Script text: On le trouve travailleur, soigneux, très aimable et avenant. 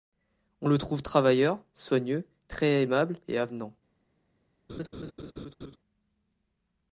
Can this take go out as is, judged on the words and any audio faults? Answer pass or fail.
fail